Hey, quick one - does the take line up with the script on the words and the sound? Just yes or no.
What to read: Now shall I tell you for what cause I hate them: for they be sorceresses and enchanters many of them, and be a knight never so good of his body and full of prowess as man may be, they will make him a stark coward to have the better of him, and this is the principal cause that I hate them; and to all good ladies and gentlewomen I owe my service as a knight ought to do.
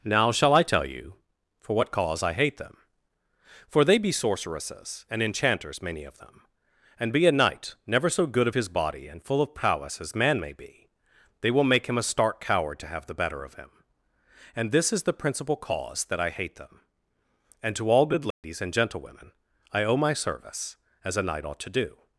no